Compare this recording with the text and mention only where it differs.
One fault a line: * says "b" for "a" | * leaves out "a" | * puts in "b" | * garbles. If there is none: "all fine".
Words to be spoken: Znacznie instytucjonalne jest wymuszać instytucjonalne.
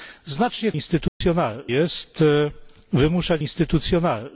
all fine